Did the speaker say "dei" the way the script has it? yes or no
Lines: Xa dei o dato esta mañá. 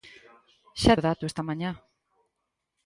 no